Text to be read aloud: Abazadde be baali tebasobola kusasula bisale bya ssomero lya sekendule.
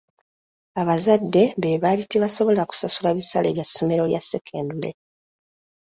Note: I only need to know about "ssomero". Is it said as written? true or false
true